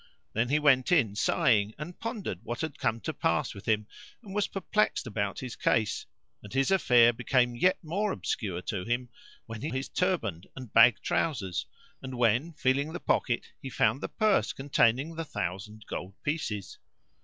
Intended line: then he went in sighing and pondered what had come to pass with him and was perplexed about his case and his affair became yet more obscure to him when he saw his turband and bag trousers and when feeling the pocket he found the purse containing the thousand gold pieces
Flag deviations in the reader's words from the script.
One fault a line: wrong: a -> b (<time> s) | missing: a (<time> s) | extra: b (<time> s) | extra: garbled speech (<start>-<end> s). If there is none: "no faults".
missing: saw (9.7 s)